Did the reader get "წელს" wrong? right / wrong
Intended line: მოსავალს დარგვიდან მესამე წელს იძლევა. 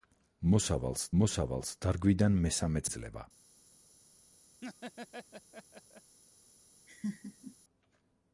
wrong